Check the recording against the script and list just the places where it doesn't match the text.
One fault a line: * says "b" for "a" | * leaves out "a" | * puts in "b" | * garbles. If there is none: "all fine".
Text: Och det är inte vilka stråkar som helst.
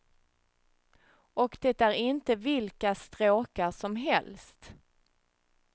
all fine